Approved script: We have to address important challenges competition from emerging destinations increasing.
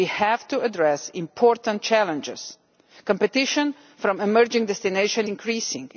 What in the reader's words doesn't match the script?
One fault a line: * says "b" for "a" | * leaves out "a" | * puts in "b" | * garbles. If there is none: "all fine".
all fine